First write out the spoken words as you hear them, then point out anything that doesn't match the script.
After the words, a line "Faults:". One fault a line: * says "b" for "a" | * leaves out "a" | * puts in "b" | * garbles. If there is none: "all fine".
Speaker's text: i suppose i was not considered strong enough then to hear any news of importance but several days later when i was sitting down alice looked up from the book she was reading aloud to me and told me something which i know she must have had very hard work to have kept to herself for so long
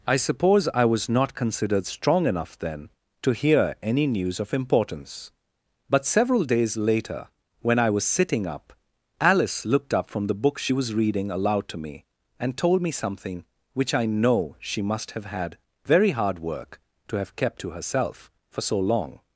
i suppose i was not considered strong enough then to hear any news of importance but several days later when i was sitting up alice looked up from the book she was reading aloud to me and told me something which i know she must have had very hard work to have kept to herself for so long
Faults:
* says "up" for "down"